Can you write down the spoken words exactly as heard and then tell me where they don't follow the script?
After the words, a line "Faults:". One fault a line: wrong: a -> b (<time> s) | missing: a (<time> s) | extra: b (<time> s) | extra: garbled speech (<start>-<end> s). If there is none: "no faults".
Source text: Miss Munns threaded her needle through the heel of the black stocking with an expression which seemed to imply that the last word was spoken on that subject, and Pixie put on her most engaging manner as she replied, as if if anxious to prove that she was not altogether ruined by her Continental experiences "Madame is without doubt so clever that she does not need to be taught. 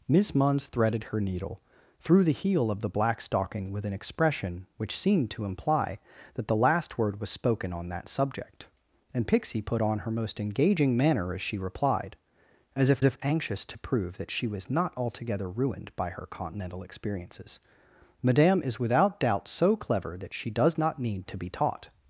Miss Munns threaded her needle through the heel of the black stocking with an expression which seemed to imply that the last word was spoken on that subject, and Pixie put on her most engaging manner as she replied, as if if anxious to prove that she was not altogether ruined by her Continental experiences "Madame is without doubt so clever that she does not need to be taught.
Faults:
no faults